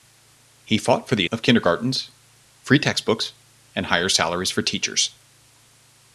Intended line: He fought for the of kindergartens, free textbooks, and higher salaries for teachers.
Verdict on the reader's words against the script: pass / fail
pass